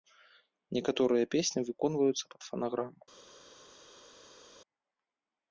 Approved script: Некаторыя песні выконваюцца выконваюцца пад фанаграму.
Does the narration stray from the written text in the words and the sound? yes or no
yes